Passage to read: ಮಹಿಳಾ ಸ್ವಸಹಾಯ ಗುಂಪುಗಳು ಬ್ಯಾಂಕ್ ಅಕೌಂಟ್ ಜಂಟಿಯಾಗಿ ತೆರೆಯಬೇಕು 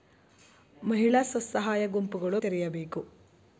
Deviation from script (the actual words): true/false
true